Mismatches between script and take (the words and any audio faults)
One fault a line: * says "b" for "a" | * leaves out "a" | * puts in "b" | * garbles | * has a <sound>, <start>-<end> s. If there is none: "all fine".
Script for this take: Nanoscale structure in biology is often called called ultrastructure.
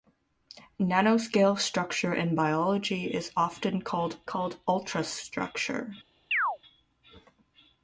* has a chirp, 6.3-6.6 s